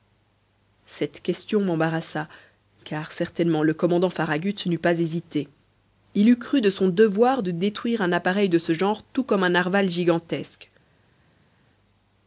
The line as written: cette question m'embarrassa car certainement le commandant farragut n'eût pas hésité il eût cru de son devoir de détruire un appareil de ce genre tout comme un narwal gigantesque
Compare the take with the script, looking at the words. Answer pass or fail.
pass